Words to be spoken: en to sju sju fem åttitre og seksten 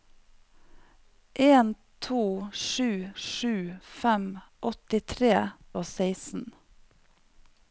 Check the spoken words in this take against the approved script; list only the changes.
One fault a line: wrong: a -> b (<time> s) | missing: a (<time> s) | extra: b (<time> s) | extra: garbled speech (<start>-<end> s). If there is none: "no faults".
no faults